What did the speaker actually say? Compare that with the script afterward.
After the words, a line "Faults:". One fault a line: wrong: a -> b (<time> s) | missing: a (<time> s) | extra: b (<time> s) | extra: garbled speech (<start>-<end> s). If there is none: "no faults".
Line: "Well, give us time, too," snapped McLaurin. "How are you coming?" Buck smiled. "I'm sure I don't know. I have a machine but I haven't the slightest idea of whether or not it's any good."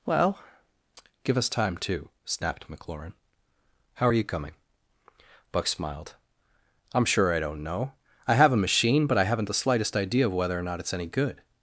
"Well, give us time, too," snapped McLaurin. "How are you coming?" Buck smiled. "I'm sure I don't know. I have a machine but I haven't the slightest idea of whether or not it's any good."
Faults:
no faults